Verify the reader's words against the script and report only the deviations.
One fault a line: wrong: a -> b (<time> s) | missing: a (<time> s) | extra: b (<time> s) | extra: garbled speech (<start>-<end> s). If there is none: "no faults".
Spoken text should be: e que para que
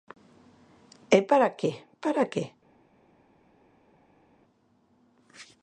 extra: para (1.3 s)